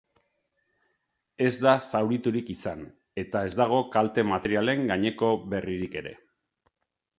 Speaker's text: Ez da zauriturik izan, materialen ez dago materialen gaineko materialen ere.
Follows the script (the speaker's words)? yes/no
no